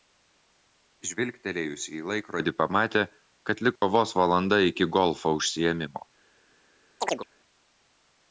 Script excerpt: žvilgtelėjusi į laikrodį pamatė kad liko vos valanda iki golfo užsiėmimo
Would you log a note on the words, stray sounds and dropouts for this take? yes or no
yes